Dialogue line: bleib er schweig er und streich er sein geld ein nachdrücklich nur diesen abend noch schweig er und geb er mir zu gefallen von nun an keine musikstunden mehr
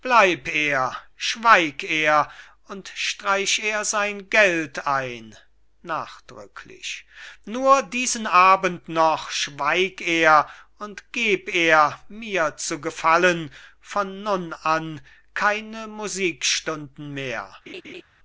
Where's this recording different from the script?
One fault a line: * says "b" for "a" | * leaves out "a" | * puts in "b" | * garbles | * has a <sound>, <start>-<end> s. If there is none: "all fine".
* has a laugh, 17.7-18.0 s